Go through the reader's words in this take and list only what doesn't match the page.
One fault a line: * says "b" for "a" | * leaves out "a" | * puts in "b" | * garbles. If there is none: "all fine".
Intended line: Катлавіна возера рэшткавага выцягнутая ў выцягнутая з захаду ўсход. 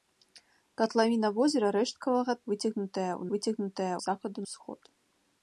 all fine